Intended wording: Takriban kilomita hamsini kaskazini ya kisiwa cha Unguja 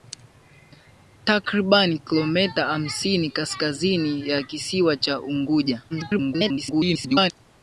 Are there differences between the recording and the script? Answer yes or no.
yes